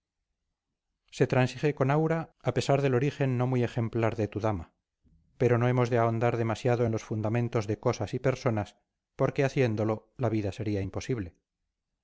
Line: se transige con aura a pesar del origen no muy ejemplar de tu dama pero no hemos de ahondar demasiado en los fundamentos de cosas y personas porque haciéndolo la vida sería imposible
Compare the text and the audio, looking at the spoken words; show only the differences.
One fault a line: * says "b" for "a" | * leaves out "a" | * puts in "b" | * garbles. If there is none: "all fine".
all fine